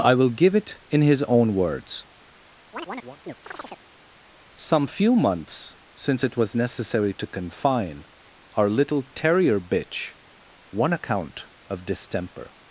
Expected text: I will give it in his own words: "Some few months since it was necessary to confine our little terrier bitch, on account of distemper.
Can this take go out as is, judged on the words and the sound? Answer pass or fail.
fail